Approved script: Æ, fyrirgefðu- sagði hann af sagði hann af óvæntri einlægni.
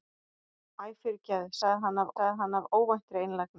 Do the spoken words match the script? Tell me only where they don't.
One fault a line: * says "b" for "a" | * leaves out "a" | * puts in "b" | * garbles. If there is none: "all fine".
all fine